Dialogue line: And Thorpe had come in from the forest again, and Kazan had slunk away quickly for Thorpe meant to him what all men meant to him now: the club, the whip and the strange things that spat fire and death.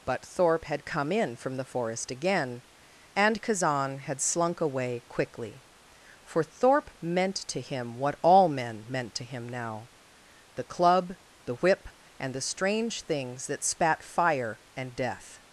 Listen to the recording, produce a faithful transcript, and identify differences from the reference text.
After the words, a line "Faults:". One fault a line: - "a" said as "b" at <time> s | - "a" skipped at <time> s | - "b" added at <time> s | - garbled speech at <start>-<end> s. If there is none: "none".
But Thorpe had come in from the forest again, and Kazan had slunk away quickly for Thorpe meant to him what all men meant to him now: the club, the whip and the strange things that spat fire and death.
Faults:
- "And" said as "But" at 0.1 s